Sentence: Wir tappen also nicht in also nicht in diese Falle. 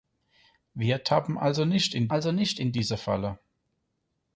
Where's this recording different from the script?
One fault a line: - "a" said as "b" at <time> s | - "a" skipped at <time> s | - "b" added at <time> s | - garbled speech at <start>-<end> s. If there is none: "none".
none